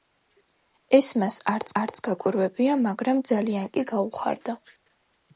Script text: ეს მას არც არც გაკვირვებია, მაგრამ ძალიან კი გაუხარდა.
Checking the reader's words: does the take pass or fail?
pass